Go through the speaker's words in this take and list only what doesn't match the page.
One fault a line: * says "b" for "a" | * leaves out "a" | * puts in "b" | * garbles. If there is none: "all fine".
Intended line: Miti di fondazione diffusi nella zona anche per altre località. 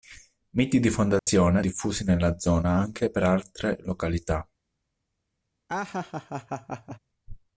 all fine